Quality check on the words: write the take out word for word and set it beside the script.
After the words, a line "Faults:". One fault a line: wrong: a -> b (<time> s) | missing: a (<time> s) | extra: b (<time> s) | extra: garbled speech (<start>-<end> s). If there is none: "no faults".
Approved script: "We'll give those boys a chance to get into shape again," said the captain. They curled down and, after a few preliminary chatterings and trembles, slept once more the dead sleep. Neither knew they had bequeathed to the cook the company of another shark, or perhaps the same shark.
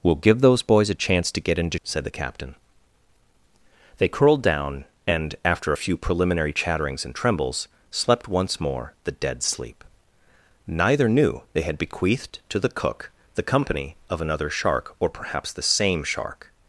"We'll give those boys a chance to get into," said the captain. They curled down and, after a few preliminary chatterings and trembles, slept once more the dead sleep. Neither knew they had bequeathed to the cook the company of another shark, or perhaps the same shark.
Faults:
missing: shape again (1.8 s)